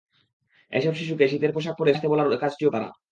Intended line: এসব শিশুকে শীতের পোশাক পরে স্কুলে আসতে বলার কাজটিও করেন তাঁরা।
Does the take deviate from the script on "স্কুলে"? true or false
true